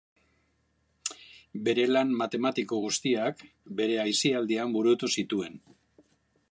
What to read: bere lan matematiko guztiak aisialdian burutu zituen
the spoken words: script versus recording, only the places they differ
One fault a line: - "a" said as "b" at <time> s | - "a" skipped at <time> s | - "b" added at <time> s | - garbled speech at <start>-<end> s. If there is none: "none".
- "bere" added at 3.8 s